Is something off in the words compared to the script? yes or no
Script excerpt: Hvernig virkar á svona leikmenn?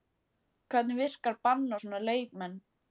yes